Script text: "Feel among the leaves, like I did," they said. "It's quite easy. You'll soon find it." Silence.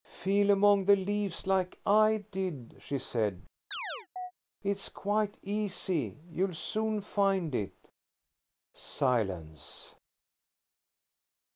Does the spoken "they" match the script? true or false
false